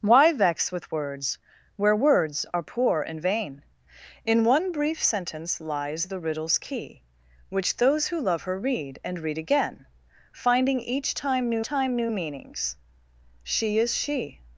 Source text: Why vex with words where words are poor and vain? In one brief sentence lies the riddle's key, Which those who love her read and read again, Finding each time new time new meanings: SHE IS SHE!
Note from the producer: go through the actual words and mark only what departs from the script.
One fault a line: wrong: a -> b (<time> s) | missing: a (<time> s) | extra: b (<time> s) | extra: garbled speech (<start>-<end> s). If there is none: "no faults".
no faults